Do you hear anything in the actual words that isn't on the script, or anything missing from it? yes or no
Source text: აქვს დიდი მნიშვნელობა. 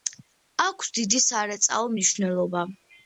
yes